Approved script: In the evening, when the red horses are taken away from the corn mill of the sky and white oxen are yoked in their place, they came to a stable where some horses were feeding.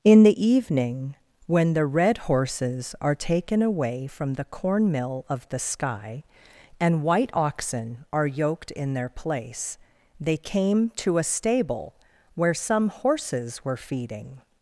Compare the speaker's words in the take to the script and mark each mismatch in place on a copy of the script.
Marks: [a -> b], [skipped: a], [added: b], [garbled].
In the evening, when the red horses are taken away from the corn mill of the sky and white oxen are yoked in their place, they came to a stable where some horses were feeding.